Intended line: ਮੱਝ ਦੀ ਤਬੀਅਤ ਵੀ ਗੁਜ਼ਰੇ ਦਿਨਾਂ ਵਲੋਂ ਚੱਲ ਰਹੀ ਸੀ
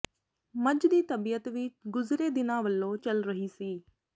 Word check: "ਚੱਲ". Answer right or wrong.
right